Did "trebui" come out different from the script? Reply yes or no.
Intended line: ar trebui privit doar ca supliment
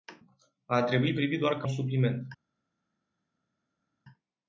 no